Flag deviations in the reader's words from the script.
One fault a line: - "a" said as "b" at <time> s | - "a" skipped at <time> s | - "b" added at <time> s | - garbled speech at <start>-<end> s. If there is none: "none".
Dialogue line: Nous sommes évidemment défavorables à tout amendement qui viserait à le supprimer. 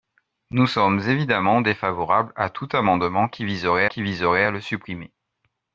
- "qui viserait" added at 3.8 s